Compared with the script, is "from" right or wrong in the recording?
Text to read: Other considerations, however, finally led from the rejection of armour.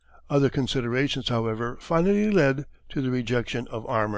wrong